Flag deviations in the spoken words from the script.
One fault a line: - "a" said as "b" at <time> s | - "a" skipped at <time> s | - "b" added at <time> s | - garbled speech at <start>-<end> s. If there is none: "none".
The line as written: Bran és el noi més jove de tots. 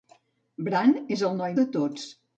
- "més jove" skipped at 1.6 s